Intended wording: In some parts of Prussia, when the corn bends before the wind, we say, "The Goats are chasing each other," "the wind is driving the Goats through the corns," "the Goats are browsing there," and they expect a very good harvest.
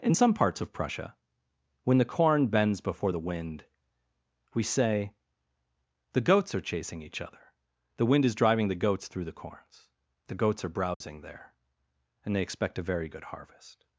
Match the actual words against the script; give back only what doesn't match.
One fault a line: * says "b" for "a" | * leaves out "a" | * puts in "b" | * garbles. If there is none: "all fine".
all fine